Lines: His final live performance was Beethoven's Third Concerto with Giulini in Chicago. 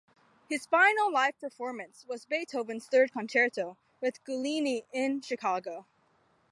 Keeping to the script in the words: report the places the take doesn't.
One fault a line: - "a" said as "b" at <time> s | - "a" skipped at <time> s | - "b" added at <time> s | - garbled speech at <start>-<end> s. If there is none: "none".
none